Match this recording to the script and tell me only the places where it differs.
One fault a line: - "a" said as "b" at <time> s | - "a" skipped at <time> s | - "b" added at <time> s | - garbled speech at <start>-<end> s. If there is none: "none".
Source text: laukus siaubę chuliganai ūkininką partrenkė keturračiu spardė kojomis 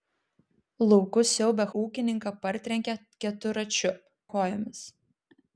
- "chuliganai" skipped at 1.7 s
- "spardė" skipped at 3.9 s